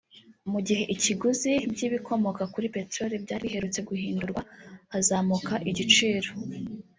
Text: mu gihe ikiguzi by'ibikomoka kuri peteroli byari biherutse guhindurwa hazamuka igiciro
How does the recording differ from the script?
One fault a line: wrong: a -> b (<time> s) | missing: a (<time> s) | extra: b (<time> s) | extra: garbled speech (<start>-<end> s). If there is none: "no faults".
no faults